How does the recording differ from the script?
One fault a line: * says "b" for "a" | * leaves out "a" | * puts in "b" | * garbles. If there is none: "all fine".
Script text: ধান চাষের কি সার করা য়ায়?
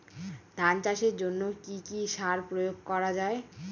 * puts in "জন্য"
* puts in "কি"
* puts in "প্রয়োগ"